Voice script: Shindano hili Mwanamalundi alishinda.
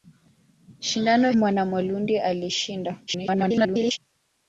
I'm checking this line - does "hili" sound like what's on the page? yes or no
no